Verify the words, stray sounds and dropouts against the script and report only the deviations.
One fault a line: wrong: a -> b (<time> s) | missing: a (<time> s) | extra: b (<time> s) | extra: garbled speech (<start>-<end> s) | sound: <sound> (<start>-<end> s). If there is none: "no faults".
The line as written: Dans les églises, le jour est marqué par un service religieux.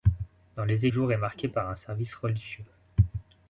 missing: églises le (0.9 s)